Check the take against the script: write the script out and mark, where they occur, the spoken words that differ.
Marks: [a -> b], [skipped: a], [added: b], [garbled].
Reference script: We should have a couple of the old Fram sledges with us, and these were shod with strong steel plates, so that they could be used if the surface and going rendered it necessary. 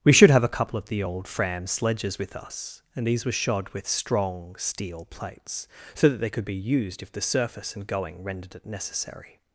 We should have a couple of the old Fram sledges with us, and these were shod with strong steel plates, so that they could be used if the surface and going rendered it necessary.